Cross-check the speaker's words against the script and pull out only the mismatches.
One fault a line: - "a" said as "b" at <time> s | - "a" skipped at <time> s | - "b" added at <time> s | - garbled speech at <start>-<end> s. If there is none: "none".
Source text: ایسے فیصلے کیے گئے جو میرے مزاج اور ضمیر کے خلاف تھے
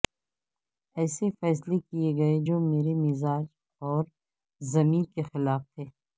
none